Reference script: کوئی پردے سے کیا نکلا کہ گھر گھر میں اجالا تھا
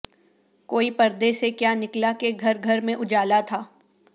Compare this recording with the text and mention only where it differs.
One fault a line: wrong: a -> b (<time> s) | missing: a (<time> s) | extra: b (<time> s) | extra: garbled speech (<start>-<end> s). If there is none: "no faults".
no faults